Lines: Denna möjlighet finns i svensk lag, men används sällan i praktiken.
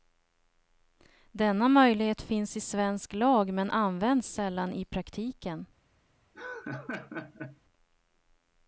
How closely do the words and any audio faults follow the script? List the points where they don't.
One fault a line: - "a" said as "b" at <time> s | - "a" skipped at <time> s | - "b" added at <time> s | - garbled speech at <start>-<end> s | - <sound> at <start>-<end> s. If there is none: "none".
- laugh at 6.3-7.6 s